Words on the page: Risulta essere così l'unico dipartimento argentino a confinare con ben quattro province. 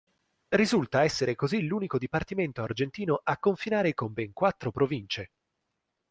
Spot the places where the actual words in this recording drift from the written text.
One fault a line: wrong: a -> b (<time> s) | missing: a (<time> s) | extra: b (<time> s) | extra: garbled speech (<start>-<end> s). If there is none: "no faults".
no faults